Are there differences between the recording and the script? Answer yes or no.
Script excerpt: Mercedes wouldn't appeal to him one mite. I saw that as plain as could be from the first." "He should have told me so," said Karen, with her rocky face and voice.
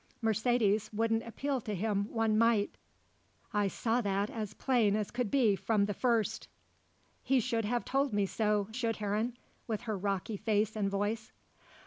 yes